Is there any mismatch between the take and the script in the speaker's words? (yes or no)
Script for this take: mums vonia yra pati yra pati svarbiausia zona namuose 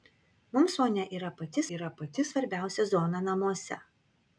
no